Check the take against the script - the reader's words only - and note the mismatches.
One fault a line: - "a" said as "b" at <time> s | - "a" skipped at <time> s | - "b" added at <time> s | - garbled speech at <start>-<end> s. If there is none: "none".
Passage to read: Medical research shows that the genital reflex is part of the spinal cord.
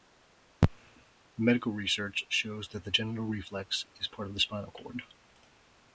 none